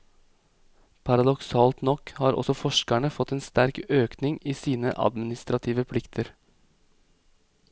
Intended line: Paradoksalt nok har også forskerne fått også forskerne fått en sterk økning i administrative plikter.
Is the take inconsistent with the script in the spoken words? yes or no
yes